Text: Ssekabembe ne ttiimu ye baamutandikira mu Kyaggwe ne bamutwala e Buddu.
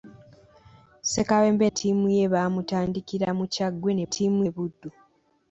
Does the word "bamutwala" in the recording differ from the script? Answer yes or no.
yes